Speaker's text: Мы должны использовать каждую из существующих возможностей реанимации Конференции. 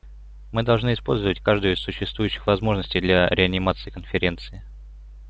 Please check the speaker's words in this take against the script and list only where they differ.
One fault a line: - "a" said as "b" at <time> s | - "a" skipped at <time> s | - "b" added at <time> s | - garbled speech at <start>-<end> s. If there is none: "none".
- "для" added at 3.0 s